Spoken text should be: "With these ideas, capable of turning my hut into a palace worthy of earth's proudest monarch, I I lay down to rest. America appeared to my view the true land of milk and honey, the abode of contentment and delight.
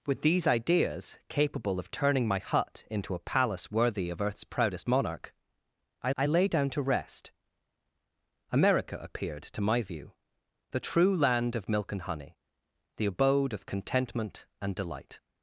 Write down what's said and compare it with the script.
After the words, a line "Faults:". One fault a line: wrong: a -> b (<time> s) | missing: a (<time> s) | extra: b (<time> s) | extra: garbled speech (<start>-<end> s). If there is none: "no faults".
"With these ideas, capable of turning my hut into a palace worthy of earth's proudest monarch, I I lay down to rest. America appeared to my view the true land of milk and honey, the abode of contentment and delight.
Faults:
no faults